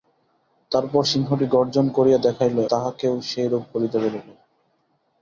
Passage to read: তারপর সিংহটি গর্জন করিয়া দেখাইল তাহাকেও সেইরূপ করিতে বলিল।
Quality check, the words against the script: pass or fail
pass